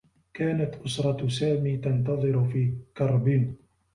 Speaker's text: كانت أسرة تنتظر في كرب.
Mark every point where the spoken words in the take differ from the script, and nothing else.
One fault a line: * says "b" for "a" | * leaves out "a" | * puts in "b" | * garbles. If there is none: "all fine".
* puts in "سامي"